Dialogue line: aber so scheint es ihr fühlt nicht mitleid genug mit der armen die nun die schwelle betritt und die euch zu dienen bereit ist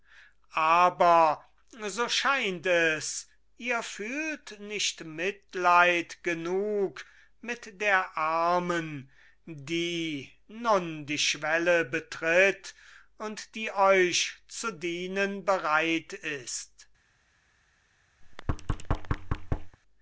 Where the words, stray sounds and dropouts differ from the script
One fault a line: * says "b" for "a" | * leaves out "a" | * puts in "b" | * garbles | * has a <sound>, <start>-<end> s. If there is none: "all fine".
* has a thud, 18.2-19.8 s